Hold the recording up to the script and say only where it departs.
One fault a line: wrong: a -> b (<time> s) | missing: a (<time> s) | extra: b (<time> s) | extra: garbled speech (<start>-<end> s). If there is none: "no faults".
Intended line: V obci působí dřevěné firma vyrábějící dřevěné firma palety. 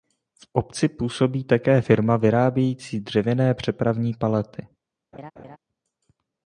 wrong: dřevěné -> také (1.4 s)
wrong: firma -> přepravní (3.5 s)